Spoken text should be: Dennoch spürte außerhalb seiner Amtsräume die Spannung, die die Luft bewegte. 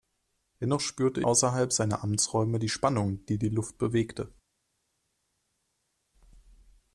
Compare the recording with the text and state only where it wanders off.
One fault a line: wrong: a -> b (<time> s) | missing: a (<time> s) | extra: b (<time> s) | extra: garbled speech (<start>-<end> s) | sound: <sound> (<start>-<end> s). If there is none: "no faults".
no faults